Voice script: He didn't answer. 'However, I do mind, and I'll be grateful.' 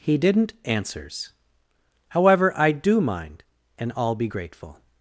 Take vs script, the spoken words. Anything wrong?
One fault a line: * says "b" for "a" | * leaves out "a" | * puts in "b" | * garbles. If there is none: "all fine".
* says "answers" for "answer"